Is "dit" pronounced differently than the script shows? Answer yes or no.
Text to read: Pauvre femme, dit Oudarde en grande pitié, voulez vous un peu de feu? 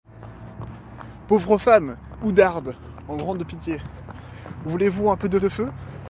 yes